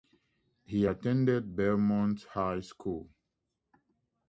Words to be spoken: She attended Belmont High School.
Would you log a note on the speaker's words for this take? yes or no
yes